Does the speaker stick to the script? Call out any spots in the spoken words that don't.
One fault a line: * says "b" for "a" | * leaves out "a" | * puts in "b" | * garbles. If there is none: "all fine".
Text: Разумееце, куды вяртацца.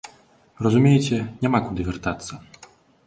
* puts in "няма"